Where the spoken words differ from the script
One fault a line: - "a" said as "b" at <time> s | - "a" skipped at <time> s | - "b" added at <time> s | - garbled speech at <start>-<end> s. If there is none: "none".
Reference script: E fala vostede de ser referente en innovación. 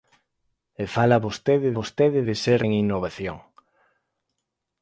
- "vostede" added at 1.8 s
- "referente" skipped at 2.6 s